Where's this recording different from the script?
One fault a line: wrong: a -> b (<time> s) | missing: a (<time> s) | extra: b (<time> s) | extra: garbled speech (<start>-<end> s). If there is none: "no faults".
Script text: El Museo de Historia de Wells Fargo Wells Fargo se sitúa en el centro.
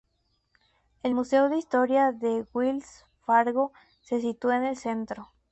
missing: Wells Fargo (3.7 s)